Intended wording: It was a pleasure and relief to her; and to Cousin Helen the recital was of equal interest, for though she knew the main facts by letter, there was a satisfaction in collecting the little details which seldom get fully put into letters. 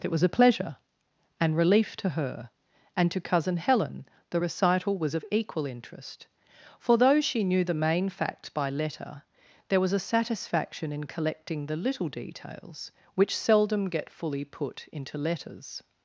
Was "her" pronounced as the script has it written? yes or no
yes